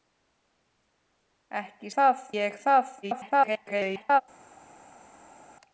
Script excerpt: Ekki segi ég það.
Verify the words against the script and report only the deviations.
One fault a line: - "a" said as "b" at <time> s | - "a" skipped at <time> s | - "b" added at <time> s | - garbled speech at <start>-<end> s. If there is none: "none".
- "segi" said as "það" at 1.9 s
- garbled speech at 3.0-4.2 s